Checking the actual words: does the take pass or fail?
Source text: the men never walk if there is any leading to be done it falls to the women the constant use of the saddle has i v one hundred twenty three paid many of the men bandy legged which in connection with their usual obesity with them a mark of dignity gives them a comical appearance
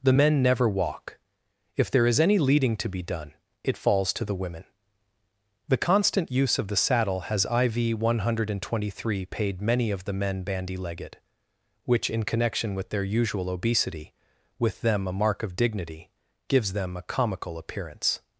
pass